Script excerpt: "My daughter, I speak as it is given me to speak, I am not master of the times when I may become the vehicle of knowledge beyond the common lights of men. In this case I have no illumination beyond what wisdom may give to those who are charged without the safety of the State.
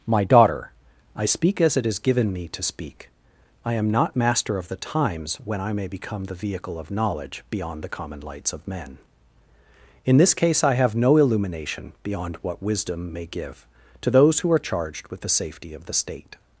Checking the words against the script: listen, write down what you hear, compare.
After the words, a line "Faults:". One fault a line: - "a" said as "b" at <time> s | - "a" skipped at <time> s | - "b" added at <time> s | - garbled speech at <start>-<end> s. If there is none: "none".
"My daughter, I speak as it is given me to speak, I am not master of the times when I may become the vehicle of knowledge beyond the common lights of men. In this case I have no illumination beyond what wisdom may give to those who are charged with the safety of the State.
Faults:
- "without" said as "with" at 15.1 s